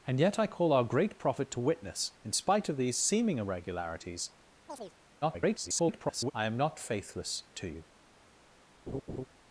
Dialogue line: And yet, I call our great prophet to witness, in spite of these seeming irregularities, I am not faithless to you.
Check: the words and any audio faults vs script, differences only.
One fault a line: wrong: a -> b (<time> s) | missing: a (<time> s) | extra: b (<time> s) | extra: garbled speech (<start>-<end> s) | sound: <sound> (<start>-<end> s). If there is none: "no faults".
sound: chirp (4.7-4.9 s)
extra: garbled speech (5.2-6.3 s)
sound: laugh (8.9-9.3 s)